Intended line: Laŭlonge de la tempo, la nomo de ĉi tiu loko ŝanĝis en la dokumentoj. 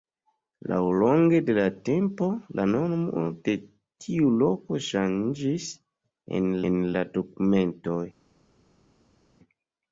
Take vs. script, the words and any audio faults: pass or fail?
fail